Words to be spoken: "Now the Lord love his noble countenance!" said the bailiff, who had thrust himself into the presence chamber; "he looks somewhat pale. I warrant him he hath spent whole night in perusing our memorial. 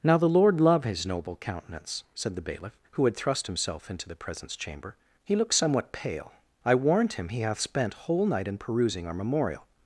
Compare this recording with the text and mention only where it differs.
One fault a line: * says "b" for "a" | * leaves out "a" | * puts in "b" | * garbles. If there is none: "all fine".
all fine